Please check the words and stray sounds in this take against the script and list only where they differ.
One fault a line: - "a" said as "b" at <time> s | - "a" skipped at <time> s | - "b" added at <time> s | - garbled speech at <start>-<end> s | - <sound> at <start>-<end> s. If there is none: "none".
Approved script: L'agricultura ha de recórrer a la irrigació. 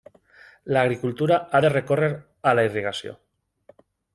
none